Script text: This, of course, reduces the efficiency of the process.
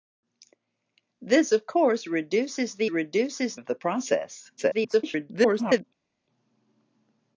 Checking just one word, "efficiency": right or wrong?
wrong